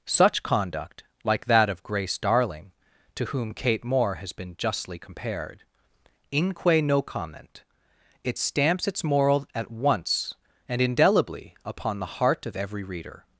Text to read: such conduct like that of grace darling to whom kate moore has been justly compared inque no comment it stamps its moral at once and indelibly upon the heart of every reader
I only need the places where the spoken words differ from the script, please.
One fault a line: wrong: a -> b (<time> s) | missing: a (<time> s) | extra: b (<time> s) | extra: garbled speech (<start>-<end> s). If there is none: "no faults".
no faults